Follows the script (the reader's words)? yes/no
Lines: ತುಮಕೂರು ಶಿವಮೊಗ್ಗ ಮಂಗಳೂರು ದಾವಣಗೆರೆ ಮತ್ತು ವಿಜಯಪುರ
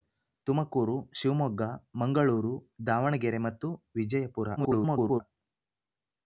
no